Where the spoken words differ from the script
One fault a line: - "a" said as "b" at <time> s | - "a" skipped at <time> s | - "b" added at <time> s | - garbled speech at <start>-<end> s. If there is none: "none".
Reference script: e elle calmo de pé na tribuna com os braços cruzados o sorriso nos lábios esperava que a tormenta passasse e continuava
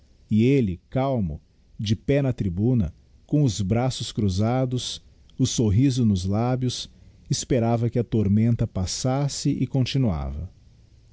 none